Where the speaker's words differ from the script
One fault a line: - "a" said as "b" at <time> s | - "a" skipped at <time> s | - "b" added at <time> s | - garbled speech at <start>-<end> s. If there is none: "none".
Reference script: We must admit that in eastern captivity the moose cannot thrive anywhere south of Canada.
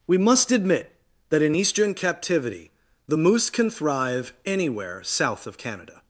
- "cannot" said as "can" at 3.5 s